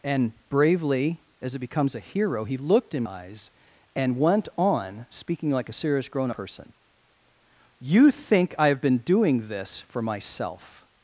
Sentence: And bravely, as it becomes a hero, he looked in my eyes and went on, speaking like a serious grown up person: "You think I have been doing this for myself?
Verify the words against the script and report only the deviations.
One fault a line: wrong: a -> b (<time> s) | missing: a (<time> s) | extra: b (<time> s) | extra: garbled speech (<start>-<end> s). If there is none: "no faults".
missing: my (3.0 s)
missing: up (6.3 s)